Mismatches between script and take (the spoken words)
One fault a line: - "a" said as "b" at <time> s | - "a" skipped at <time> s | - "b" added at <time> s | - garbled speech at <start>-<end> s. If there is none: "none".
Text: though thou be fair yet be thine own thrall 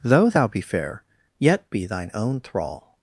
none